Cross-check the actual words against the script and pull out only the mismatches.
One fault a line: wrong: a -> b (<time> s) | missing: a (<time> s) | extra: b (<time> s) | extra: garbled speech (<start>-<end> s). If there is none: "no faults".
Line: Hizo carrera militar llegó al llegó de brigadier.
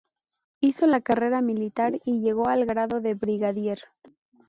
extra: la (0.9 s)
extra: y (2.0 s)
wrong: llegó -> grado (2.6 s)